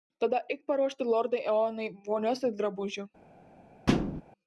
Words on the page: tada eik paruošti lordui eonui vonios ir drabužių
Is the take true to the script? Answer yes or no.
yes